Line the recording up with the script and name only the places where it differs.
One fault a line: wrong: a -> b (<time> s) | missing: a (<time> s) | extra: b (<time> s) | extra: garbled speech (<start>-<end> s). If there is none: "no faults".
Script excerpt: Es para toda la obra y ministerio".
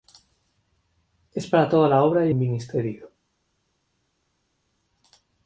no faults